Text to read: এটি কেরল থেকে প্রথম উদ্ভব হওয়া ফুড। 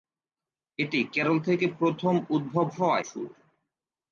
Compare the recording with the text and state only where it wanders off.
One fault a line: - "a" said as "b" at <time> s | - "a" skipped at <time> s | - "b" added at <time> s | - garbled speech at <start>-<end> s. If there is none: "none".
none